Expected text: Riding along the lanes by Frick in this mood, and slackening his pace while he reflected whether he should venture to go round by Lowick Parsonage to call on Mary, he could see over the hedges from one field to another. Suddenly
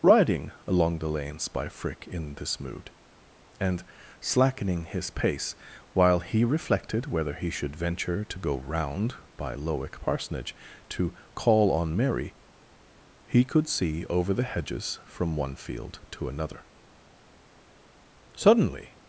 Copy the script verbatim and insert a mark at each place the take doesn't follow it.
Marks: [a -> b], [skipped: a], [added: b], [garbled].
Riding along the lanes by Frick in this mood, and slackening his pace while he reflected whether he should venture to go round by Lowick Parsonage to call on Mary, he could see over the hedges from one field to another. Suddenly